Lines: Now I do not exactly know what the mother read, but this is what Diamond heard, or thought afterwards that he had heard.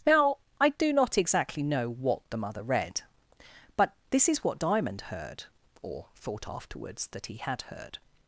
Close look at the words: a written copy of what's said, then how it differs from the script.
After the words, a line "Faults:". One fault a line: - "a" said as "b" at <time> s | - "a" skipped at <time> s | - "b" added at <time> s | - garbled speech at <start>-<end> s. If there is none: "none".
Now I do not exactly know what the mother read, but this is what Diamond heard, or thought afterwards that he had heard.
Faults:
none